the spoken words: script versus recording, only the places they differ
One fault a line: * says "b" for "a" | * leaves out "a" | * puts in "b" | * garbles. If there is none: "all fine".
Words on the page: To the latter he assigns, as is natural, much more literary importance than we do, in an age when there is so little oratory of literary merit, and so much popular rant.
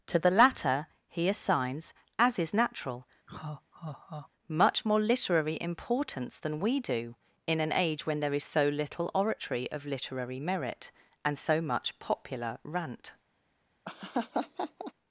all fine